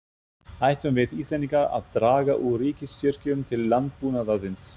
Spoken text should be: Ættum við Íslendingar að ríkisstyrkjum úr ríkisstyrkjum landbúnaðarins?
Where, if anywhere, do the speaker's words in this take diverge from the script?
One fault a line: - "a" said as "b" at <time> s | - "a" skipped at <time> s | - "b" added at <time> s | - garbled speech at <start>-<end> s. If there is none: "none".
- "ríkisstyrkjum" said as "draga" at 2.0 s
- "til" added at 3.5 s